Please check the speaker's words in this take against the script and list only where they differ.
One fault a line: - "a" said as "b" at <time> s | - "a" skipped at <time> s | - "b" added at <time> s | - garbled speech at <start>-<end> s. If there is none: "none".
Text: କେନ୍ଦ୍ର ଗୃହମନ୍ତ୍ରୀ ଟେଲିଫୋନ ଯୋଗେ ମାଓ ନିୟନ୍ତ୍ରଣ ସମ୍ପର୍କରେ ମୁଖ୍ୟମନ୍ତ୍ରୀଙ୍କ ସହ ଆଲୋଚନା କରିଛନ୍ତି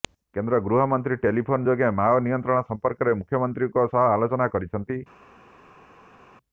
none